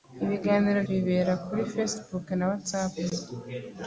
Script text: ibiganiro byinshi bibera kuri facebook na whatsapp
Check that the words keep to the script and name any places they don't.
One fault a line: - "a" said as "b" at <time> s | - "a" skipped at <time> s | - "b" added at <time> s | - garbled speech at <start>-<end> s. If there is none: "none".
- "byinshi" skipped at 0.8 s